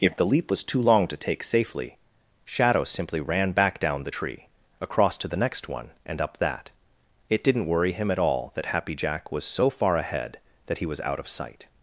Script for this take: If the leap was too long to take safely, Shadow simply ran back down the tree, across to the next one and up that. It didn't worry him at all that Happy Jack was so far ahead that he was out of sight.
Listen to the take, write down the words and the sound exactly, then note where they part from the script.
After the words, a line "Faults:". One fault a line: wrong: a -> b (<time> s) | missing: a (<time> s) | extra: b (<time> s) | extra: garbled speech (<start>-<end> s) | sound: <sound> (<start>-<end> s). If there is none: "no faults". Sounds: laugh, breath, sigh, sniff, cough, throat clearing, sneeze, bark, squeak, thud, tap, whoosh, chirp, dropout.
If the leap was too long to take safely, Shadow simply ran back down the tree, across to the next one and up that. It didn't worry him at all that Happy Jack was so far ahead that he was out of sight.
Faults:
no faults